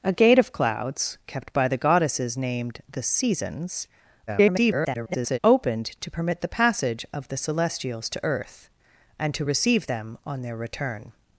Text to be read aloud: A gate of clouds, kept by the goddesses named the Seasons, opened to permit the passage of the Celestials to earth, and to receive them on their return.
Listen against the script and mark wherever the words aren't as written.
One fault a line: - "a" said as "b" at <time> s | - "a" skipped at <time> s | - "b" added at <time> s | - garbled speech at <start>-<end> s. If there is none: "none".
- garbled speech at 4.3-5.4 s